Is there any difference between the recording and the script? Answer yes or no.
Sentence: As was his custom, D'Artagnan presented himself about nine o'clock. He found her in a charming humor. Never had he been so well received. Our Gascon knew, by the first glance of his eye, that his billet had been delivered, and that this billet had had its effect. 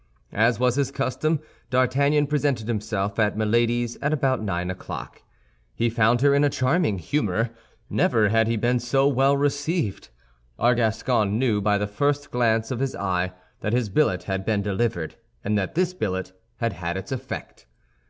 yes